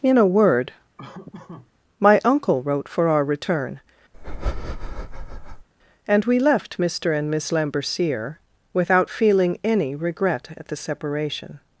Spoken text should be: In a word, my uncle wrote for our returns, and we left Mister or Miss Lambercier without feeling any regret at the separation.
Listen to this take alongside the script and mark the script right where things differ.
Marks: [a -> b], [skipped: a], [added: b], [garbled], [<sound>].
In a word, [laugh] my uncle wrote for our [returns, -> return] [breath] and we left Mister [or -> and] Miss Lambercier without feeling any regret at the separation.